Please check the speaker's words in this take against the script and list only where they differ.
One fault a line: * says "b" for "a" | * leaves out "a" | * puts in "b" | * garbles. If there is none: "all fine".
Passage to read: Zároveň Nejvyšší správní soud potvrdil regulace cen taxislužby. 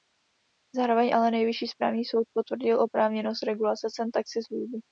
* puts in "ale"
* puts in "oprávněnost"